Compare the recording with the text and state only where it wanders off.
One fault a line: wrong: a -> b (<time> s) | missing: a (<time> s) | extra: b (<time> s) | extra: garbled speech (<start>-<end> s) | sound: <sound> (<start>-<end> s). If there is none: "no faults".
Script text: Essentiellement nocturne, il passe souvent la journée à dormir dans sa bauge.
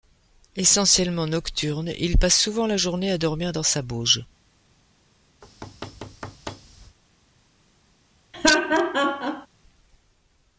sound: thud (5.4-7.0 s)
sound: laugh (8.3-9.5 s)